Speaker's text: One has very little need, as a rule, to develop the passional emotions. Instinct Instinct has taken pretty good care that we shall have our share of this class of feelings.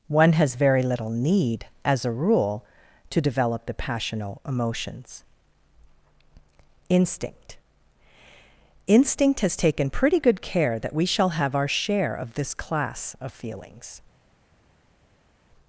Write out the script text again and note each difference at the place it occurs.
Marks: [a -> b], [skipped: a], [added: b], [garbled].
One has very little need, as a rule, to develop the passional emotions. Instinct Instinct has taken pretty good care that we shall have our share of this class of feelings.